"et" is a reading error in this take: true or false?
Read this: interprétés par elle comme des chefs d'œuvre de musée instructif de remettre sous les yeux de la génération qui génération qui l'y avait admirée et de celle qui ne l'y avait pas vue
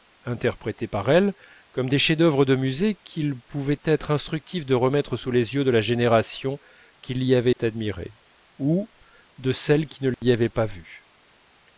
true